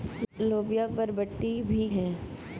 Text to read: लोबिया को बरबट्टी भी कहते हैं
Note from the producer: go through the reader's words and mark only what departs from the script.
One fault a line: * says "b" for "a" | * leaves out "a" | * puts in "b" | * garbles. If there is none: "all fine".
* leaves out "को"
* leaves out "कहते"